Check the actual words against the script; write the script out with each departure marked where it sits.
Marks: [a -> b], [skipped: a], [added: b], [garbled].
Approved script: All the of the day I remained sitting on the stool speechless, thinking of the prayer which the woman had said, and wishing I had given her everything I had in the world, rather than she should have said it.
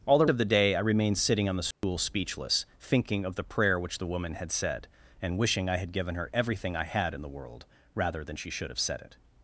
All the of the day I remained sitting on the stool speechless, thinking of the prayer which the woman had said, and wishing I had given her everything I had in the world, rather than she should have said it.